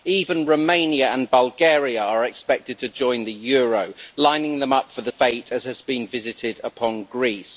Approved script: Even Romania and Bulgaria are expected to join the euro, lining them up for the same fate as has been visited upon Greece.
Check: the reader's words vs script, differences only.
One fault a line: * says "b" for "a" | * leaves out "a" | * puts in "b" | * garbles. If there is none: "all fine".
* leaves out "same"